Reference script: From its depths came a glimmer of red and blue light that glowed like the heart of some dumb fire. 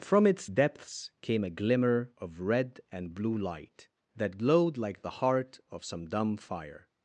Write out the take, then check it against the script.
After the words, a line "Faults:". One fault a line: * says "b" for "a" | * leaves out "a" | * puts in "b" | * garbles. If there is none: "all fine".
From its depths came a glimmer of red and blue light that glowed like the heart of some dumb fire.
Faults:
all fine